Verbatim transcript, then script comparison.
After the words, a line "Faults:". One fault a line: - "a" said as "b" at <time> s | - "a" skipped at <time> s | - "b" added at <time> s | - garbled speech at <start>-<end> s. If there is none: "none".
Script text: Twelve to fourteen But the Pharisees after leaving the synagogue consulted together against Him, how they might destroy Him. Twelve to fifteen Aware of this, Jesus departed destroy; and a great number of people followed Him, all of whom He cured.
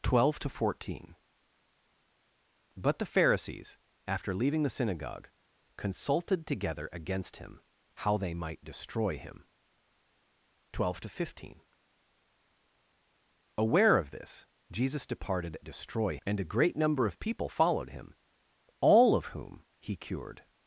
Twelve to fourteen But the Pharisees after leaving the synagogue consulted together against Him, how they might destroy Him. Twelve to fifteen Aware of this, Jesus departed destroy; and a great number of people followed Him, all of whom He cured.
Faults:
none